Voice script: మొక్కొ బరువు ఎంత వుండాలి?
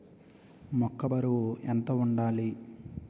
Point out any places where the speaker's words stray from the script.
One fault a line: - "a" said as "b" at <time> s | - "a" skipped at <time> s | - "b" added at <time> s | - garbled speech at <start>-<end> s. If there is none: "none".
none